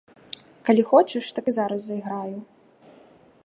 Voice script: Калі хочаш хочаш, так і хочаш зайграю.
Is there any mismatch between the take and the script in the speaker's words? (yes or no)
yes